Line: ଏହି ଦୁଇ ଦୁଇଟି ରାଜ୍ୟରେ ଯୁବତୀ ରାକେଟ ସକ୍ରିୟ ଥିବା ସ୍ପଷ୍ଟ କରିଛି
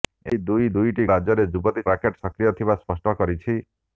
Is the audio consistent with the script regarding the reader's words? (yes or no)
yes